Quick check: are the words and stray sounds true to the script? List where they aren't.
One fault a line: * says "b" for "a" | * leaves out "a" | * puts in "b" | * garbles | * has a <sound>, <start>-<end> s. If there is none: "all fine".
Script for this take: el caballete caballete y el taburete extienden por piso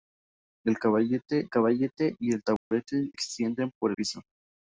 * has a dropout, 2.6-2.7 s